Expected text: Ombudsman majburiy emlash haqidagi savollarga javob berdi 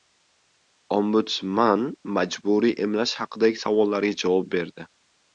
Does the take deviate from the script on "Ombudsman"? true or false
false